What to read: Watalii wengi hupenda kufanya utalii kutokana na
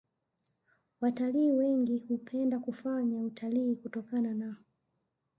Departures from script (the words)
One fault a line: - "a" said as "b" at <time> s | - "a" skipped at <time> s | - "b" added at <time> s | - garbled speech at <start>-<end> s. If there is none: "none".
none